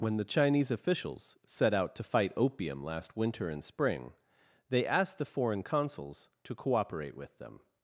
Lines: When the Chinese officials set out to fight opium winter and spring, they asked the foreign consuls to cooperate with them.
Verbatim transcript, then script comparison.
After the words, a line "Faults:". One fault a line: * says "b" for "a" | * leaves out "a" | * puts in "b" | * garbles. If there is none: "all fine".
When the Chinese officials set out to fight opium last winter and spring, they asked the foreign consuls to cooperate with them.
Faults:
* puts in "last"